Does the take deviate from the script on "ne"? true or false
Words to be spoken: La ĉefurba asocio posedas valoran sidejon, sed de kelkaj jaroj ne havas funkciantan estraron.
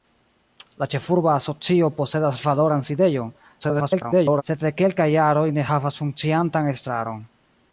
false